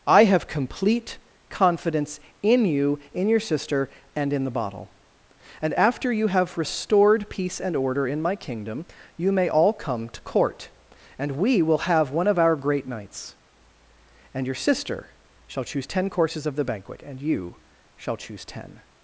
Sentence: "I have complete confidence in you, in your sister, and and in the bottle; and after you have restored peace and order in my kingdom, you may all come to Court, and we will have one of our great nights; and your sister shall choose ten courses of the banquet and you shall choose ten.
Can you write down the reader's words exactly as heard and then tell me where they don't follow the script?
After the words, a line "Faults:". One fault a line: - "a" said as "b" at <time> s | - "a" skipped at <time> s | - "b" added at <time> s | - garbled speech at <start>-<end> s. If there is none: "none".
"I have complete confidence in you, in your sister, and in the bottle; and after you have restored peace and order in my kingdom, you may all come to Court, and we will have one of our great nights; and your sister shall choose ten courses of the banquet and you shall choose ten.
Faults:
- "and" skipped at 4.3 s